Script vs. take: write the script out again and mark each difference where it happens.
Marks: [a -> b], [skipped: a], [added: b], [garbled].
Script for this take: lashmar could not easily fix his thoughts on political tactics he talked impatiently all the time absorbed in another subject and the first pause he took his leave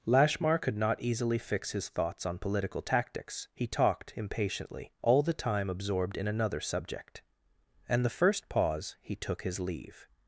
lashmar could not easily fix his thoughts on political tactics he talked impatiently all the time absorbed in another subject and the first pause he took his leave